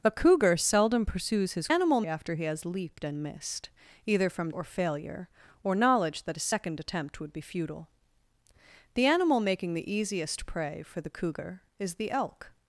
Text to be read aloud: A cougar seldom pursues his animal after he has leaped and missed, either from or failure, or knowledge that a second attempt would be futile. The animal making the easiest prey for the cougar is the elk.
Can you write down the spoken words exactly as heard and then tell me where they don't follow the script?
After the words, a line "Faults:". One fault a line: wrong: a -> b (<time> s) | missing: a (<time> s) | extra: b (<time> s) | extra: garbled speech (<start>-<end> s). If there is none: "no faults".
A cougar seldom pursues his animal after he has leaped and missed, either from or failure, or knowledge that a second attempt would be futile. The animal making the easiest prey for the cougar is the elk.
Faults:
no faults